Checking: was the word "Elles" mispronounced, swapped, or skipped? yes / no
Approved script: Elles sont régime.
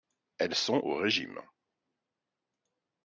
no